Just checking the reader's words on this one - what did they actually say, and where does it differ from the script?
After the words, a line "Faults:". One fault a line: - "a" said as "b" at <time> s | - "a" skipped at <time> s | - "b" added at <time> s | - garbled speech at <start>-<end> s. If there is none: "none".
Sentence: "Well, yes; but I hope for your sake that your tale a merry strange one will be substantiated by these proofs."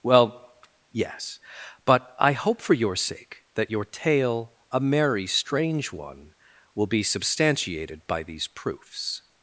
"Well, yes; but I hope for your sake that your tale a merry strange one will be substantiated by these proofs."
Faults:
none